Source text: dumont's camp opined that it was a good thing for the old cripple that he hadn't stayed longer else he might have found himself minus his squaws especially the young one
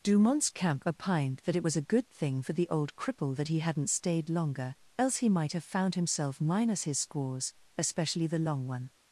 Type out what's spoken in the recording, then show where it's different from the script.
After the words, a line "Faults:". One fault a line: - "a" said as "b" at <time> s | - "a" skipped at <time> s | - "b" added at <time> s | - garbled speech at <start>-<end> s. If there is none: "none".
dumont's camp opined that it was a good thing for the old cripple that he hadn't stayed longer else he might have found himself minus his squaws especially the long one
Faults:
- "young" said as "long" at 8.4 s